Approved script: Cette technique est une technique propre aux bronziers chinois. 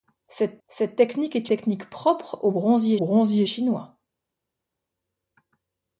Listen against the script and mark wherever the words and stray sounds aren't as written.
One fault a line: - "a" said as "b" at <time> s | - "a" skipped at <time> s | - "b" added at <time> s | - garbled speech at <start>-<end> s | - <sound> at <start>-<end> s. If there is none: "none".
- "cette" added at 0.7 s
- "une" skipped at 1.5 s
- "bronziers" added at 3.0 s